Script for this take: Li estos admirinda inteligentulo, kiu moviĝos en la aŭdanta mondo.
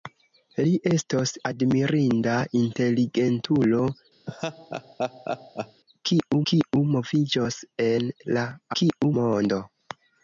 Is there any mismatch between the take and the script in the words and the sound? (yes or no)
yes